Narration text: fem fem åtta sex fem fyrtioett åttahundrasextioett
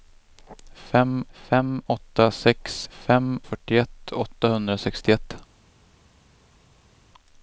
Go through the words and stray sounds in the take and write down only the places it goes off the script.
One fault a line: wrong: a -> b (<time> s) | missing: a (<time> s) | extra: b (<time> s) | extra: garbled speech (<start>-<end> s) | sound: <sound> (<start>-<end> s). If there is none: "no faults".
no faults